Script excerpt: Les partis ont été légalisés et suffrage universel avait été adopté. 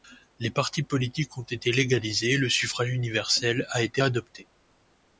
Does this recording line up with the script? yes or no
no